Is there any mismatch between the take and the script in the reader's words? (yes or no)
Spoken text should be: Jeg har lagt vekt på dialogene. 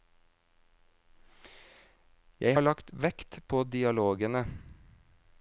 no